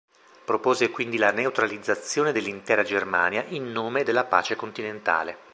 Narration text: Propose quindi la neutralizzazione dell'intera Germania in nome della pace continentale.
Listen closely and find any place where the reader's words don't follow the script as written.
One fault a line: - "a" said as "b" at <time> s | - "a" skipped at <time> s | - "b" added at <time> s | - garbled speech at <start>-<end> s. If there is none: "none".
none